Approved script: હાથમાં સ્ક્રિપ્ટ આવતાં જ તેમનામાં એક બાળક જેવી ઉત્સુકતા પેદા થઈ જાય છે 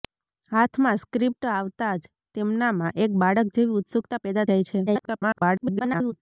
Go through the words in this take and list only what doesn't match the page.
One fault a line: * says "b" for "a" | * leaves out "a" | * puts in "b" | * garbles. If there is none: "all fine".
* leaves out "થઈ"
* garbles